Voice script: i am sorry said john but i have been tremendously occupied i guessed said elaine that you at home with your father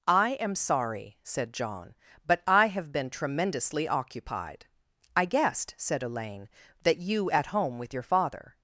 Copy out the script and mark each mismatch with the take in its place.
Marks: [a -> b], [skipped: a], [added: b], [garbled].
i am sorry said john but i have been tremendously occupied i guessed said elaine that you at home with your father